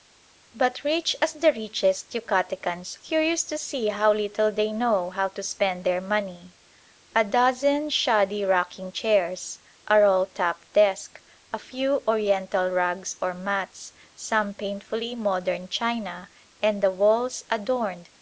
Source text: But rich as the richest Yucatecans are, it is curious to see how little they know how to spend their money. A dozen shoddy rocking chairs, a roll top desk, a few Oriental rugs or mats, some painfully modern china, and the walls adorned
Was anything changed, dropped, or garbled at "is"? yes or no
yes